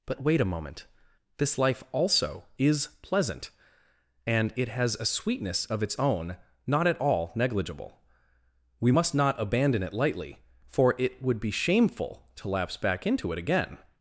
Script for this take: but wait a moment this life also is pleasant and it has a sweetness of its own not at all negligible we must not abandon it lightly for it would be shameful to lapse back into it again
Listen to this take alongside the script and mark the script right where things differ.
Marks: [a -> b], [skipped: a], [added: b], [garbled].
but wait a moment this life also is pleasant and it has a sweetness of its own not at all negligible we must not abandon it lightly for it would be shameful to lapse back into it again